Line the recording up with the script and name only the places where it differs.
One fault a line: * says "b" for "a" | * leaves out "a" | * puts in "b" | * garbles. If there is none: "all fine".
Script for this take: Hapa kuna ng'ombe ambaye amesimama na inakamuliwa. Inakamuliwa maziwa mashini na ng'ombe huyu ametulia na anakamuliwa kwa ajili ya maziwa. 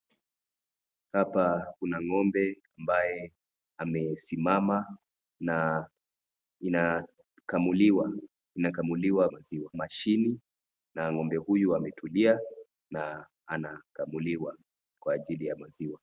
all fine